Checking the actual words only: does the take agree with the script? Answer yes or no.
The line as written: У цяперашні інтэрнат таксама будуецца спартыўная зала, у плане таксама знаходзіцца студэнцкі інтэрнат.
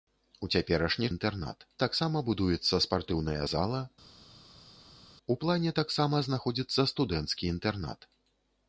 yes